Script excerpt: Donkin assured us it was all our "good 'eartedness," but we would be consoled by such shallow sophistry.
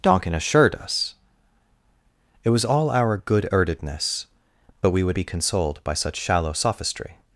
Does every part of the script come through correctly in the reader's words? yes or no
yes